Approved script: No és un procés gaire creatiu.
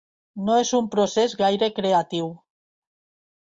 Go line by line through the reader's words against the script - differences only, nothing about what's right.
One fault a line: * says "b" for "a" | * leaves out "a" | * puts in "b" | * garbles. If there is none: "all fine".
all fine